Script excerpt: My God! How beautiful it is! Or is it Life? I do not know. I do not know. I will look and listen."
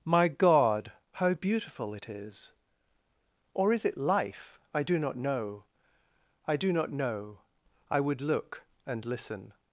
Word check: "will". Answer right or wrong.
wrong